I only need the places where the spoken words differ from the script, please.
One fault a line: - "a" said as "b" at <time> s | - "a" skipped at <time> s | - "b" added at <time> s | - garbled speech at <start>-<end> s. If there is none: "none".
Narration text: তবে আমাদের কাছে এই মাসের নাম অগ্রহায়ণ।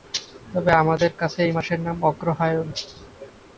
none